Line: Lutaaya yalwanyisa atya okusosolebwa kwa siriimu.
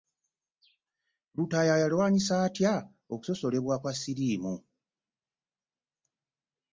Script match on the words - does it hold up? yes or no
yes